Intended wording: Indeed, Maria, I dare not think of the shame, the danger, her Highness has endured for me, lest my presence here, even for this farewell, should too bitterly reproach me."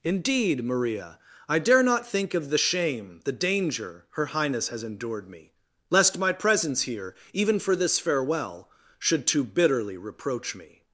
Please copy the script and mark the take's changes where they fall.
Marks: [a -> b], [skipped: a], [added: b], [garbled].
Indeed, Maria, I dare not think of the shame, the danger, her Highness has endured [skipped: for] me, lest my presence here, even for this farewell, should too bitterly reproach me."